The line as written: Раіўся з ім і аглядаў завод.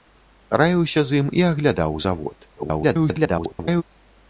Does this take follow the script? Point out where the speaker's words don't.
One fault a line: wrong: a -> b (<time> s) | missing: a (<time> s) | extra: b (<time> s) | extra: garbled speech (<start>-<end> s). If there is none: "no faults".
extra: garbled speech (2.6-3.8 s)